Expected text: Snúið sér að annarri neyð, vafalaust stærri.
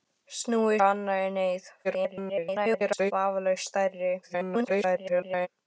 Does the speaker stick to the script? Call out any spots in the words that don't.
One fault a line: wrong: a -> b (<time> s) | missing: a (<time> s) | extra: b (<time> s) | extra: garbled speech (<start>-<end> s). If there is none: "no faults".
missing: sér (0.8 s)
extra: garbled speech (1.8-3.1 s)
extra: garbled speech (4.2-5.5 s)